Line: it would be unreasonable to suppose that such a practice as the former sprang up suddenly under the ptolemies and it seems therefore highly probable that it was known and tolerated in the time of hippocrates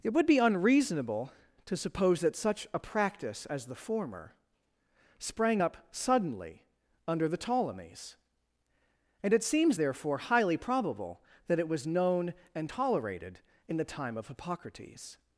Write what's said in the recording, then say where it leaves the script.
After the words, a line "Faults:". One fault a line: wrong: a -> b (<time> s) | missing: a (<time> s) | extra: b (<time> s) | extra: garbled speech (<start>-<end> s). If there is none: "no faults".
it would be unreasonable to suppose that such a practice as the former sprang up suddenly under the ptolemies and it seems therefore highly probable that it was known and tolerated in the time of hippocrates
Faults:
no faults